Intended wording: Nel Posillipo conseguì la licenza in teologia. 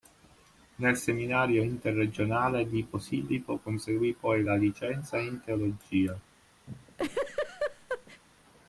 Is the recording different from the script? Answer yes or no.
yes